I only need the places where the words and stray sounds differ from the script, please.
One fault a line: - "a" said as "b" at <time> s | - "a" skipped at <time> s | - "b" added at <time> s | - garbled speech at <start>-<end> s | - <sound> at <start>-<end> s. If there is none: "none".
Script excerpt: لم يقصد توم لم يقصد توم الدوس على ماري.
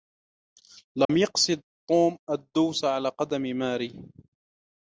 - dropout at 1.0-1.1 s
- "لم يقصد توم" skipped at 2.2 s
- "قدم" added at 3.1 s